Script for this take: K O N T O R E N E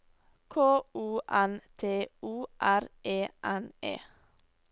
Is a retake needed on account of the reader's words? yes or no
no